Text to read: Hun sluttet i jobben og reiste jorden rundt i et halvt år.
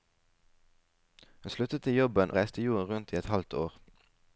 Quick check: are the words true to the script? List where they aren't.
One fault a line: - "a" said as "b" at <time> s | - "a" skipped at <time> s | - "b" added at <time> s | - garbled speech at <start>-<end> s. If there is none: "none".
- "og" skipped at 2.3 s